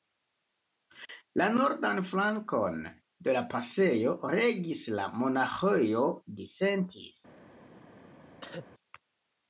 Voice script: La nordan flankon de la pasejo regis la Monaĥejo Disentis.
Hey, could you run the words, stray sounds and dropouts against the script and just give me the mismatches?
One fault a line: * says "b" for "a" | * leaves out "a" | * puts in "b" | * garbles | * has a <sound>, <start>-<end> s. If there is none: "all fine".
* has a cough, 8.4-8.7 s